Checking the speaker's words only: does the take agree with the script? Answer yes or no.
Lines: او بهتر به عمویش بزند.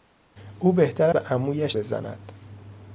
yes